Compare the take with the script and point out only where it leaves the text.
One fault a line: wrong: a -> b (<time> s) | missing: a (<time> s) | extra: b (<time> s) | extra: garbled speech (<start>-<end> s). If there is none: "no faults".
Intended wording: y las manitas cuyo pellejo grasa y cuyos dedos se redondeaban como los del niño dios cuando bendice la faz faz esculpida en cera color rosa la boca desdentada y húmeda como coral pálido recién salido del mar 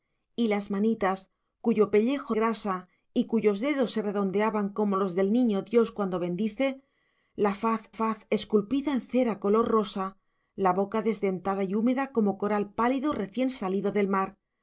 no faults